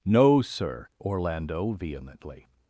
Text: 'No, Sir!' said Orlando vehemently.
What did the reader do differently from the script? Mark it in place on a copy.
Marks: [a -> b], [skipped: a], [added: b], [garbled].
'No, Sir!' [skipped: said] Orlando vehemently.